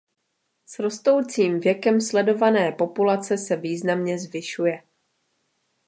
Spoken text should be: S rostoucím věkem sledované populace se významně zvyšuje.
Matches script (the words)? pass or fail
pass